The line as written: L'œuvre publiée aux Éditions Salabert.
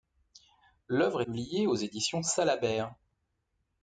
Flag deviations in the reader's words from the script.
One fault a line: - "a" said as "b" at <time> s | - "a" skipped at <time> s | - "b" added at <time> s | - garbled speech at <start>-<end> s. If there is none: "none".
none